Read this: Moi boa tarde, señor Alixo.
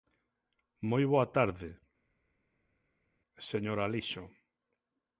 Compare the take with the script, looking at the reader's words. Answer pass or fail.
pass